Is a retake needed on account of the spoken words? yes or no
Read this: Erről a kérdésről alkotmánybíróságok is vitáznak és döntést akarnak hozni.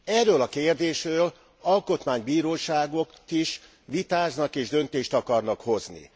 no